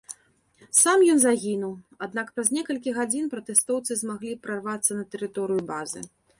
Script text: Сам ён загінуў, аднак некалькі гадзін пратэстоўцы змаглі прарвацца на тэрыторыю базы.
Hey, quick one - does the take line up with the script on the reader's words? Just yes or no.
no